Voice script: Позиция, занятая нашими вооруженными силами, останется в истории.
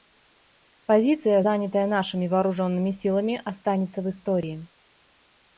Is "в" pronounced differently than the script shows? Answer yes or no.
no